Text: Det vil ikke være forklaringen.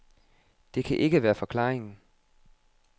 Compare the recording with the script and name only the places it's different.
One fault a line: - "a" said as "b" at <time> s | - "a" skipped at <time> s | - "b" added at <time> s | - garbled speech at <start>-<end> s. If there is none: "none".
- "vil" said as "kan" at 0.8 s